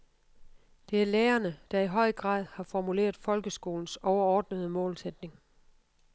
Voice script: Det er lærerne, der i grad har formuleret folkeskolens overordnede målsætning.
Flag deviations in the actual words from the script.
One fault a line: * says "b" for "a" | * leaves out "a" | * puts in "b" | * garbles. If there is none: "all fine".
* puts in "høj"